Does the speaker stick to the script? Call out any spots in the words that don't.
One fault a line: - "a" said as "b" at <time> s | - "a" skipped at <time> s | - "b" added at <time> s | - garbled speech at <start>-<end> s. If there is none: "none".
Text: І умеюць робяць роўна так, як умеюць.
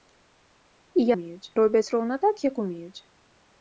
none